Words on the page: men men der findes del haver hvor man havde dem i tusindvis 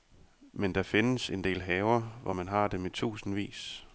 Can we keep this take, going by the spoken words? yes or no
no